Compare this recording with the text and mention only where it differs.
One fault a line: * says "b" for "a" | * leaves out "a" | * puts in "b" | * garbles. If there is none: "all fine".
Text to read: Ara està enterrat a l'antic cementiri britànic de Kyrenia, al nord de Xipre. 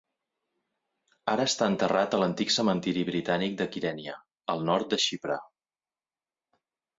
all fine